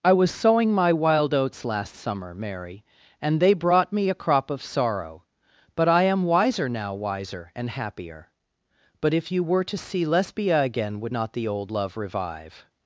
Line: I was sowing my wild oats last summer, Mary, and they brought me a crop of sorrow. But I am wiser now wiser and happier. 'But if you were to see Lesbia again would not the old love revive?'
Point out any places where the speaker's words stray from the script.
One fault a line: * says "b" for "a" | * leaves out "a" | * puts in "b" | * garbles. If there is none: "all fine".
all fine